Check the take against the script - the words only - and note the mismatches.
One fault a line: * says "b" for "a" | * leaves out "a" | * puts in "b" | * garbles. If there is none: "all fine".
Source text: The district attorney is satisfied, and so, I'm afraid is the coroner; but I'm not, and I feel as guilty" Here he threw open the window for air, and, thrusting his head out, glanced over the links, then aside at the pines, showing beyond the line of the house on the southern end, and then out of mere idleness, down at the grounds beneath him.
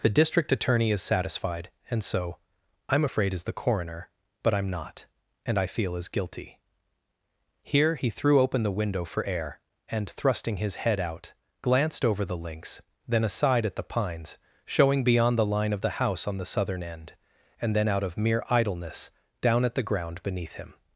* says "ground" for "grounds"